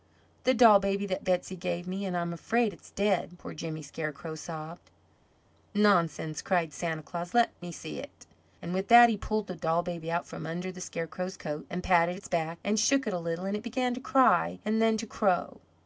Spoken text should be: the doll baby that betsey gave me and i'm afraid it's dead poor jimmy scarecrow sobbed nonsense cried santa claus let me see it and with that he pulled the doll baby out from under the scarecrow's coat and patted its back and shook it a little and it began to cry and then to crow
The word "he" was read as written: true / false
true